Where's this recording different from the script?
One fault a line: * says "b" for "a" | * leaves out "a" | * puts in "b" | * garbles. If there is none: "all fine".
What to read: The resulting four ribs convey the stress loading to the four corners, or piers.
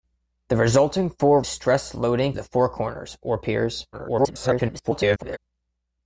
* leaves out "ribs convey the"
* leaves out "to"
* garbles